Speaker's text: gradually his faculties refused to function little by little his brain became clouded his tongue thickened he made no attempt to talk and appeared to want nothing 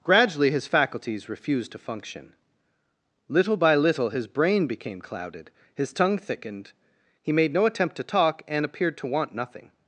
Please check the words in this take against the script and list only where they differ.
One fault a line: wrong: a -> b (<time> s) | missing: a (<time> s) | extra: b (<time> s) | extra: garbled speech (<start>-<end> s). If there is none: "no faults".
no faults